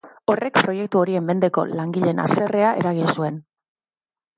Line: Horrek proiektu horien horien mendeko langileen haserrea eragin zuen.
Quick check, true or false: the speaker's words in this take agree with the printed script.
false